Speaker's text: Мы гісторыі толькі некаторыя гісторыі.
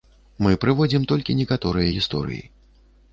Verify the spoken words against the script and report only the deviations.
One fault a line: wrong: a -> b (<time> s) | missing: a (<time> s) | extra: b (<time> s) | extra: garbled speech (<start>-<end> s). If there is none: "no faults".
wrong: гісторыі -> прыводзім (0.6 s)